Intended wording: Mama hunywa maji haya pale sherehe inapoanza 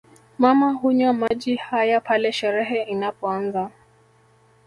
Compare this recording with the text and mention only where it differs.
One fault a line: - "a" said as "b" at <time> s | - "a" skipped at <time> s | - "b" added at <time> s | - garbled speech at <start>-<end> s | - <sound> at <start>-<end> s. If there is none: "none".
- dropout at 1.3-1.3 s